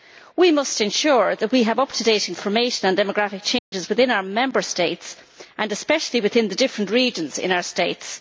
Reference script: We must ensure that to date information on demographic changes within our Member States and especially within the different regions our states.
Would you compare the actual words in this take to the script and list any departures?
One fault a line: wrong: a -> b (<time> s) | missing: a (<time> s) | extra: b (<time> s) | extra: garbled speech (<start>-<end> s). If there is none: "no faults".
extra: we have up (1.5 s)
extra: in (7.4 s)